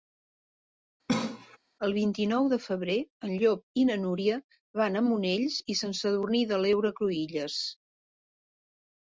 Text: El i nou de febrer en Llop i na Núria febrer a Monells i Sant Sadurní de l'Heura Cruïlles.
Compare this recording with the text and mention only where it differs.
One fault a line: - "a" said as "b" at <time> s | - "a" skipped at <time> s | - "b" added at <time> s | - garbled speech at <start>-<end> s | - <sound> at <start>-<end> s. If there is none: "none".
- cough at 1.1-1.6 s
- "vint" added at 1.9 s
- "febrer" said as "van" at 4.8 s